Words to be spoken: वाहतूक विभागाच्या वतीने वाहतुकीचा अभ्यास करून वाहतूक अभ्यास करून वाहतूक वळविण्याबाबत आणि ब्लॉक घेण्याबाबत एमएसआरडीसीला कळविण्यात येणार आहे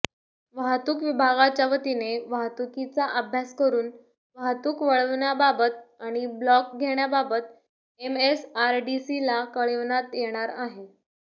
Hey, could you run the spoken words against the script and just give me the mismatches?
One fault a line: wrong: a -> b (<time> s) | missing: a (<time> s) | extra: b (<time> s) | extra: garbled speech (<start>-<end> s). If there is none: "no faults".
missing: अभ्यास करून वाहतूक (4.8 s)